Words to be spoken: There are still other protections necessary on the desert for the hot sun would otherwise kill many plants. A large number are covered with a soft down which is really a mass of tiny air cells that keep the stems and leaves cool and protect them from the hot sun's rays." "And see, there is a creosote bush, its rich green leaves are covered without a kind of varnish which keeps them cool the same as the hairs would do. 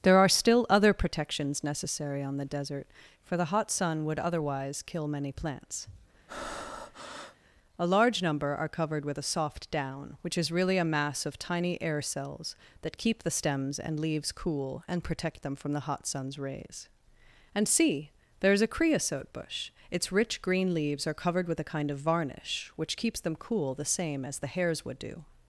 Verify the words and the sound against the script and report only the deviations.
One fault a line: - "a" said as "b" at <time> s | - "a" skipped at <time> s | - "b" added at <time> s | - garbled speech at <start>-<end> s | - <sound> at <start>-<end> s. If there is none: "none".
- breath at 6.3-7.4 s
- "without" said as "with" at 21.5 s